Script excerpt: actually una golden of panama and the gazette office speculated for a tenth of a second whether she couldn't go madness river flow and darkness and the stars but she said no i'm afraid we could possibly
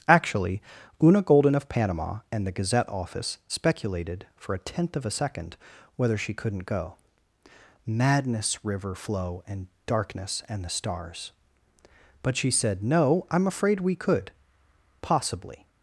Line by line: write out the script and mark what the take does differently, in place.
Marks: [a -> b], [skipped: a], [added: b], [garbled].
actually una golden of panama and the gazette office speculated for a tenth of a second whether she couldn't go madness river flow and darkness and the stars but she said no i'm afraid we could possibly